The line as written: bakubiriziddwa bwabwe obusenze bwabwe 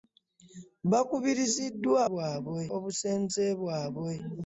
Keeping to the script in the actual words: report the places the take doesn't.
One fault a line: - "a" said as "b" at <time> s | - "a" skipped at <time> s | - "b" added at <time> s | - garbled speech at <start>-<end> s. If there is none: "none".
none